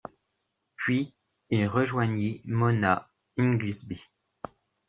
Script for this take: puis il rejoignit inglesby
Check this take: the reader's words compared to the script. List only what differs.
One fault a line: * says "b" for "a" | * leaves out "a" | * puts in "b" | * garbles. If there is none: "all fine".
* puts in "mona"